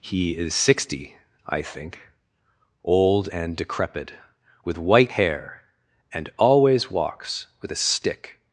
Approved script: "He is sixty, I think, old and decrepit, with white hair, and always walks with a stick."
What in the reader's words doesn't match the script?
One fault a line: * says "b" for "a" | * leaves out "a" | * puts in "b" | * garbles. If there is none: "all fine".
all fine